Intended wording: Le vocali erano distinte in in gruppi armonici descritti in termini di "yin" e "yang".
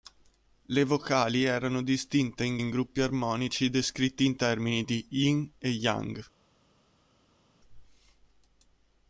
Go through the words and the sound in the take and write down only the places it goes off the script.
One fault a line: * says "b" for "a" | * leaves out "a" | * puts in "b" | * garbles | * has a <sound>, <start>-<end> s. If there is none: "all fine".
all fine